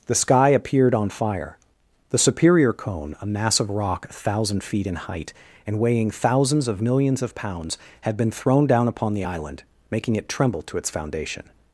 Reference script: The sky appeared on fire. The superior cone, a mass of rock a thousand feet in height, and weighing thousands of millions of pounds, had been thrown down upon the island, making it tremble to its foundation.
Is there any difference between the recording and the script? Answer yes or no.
no